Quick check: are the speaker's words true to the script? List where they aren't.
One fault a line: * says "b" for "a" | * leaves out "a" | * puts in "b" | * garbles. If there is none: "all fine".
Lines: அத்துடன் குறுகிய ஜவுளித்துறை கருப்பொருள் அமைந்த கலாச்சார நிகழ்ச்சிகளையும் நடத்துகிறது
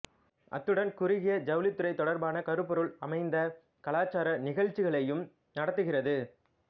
* puts in "தொடர்பான"